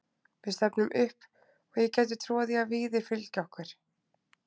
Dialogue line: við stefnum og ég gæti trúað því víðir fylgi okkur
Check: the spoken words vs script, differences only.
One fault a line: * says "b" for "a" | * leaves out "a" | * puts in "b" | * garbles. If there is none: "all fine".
* puts in "upp"
* puts in "að"